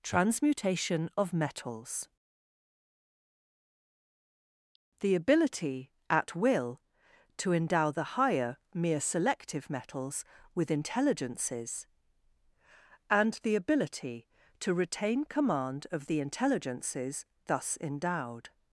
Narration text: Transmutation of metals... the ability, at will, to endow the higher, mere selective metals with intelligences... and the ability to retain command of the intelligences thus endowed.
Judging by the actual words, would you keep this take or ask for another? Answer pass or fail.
pass